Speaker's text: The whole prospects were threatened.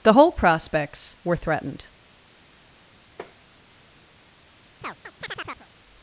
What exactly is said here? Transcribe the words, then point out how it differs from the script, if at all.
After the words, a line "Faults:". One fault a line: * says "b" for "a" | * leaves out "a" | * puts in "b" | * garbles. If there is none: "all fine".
The whole prospects were threatened.
Faults:
all fine